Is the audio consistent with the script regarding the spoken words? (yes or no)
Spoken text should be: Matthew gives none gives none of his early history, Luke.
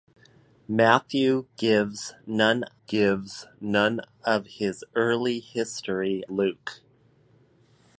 yes